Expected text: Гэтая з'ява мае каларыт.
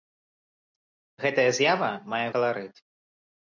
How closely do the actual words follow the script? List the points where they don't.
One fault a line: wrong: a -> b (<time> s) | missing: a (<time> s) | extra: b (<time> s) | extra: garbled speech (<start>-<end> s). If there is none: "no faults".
no faults